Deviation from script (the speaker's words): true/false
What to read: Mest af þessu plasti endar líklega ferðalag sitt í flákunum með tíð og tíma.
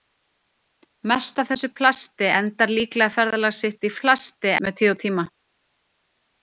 true